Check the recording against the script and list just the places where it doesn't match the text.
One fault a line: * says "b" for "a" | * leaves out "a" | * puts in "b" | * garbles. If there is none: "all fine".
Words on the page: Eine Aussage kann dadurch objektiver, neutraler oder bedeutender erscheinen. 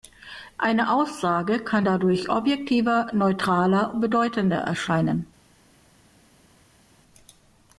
* leaves out "oder"